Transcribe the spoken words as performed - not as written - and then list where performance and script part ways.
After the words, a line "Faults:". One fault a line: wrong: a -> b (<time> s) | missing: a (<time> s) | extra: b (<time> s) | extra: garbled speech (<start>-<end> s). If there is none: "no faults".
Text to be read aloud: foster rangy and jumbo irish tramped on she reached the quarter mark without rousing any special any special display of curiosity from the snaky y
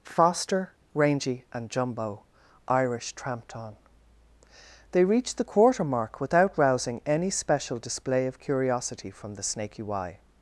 foster rangy and jumbo irish tramped on they reached the quarter mark without rousing any special display of curiosity from the snaky y
Faults:
wrong: she -> they (4.9 s)
missing: any special (7.8 s)